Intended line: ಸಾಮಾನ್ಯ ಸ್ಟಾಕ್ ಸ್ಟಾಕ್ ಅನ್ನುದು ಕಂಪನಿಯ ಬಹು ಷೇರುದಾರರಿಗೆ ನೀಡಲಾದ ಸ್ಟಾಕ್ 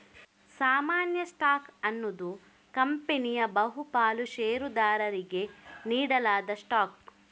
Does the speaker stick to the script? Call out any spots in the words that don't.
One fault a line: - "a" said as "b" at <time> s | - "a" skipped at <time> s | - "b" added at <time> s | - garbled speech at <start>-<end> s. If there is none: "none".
- "ಸ್ಟಾಕ್" skipped at 1.7 s
- "ಪಾಲು" added at 3.9 s